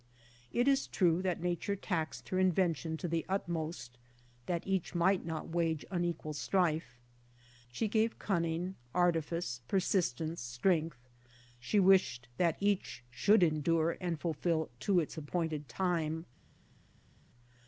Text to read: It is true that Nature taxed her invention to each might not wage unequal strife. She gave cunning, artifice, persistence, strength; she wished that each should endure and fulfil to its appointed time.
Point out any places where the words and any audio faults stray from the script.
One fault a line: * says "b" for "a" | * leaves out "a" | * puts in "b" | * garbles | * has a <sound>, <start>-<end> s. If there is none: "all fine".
* puts in "the utmost that"